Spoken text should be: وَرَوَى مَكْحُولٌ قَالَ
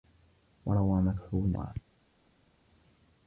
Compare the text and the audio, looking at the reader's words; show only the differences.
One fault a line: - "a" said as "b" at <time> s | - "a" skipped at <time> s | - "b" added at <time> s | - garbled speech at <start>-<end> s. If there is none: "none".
none